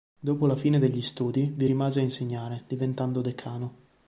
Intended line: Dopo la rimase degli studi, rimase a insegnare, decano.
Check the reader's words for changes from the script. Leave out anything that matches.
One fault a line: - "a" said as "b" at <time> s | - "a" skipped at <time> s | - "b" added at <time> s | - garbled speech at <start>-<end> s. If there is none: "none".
- "rimase" said as "fine" at 0.6 s
- "vi" added at 1.6 s
- "diventando" added at 2.7 s